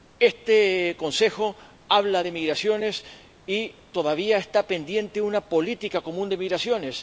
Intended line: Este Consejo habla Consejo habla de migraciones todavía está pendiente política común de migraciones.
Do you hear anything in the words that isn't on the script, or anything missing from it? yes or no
yes